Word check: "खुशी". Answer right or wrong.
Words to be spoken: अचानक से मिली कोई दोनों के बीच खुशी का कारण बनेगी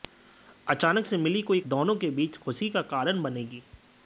right